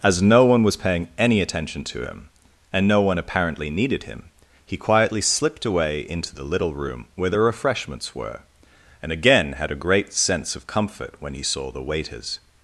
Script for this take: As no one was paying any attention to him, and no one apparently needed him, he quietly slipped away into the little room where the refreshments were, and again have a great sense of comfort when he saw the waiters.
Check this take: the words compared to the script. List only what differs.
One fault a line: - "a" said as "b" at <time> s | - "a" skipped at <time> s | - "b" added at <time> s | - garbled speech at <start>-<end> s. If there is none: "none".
- "have" said as "had" at 9.5 s